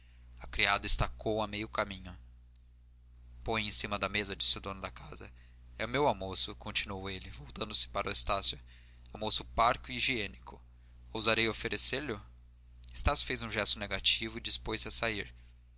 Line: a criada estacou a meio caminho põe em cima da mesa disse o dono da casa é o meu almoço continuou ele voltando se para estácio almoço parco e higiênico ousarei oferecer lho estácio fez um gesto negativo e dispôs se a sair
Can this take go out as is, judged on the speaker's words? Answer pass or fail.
pass